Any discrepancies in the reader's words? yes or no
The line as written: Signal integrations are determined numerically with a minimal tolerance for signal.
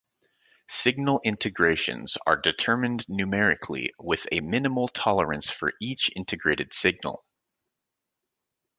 yes